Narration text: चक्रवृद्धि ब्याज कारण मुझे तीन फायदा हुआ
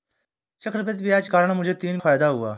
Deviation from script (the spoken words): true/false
false